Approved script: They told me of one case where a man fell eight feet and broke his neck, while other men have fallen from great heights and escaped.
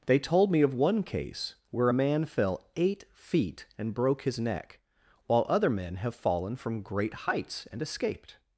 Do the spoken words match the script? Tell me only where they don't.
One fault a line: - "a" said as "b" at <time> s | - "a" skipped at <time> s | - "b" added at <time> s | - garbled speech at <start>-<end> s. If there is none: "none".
none